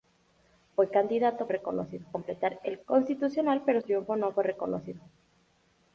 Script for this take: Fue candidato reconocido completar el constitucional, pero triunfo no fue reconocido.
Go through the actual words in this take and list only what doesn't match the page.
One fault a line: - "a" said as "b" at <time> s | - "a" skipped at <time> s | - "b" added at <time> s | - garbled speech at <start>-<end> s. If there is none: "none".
none